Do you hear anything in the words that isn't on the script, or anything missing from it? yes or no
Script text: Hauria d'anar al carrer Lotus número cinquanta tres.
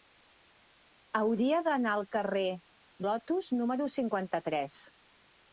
no